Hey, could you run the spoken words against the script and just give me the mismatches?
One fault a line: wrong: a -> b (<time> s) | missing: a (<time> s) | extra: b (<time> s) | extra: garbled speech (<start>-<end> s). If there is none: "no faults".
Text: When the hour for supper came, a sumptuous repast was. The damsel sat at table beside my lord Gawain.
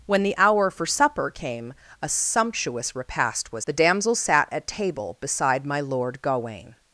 no faults